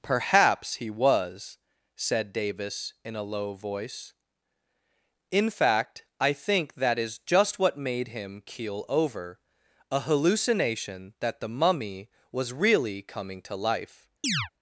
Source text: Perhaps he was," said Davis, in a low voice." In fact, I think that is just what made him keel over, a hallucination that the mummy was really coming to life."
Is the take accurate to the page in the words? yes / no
yes